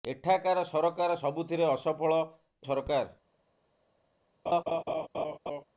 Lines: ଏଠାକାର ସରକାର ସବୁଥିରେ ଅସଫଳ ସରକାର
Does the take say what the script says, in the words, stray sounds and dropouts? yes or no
no